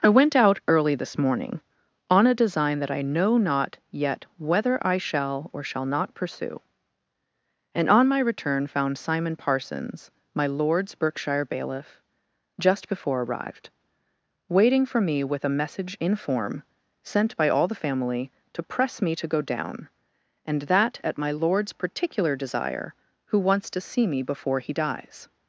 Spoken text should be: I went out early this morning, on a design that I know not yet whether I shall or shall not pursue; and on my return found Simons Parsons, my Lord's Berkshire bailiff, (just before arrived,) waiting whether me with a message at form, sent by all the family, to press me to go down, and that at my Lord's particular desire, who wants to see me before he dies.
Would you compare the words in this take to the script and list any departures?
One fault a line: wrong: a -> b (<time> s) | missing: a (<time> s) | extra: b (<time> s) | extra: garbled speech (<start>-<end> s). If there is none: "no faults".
wrong: Simons -> Simon (9.0 s)
wrong: whether -> for (14.9 s)
wrong: at -> in (16.0 s)